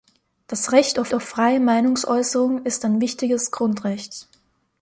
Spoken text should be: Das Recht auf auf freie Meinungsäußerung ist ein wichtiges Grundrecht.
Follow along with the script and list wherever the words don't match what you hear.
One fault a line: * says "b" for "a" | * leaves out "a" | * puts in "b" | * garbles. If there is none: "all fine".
all fine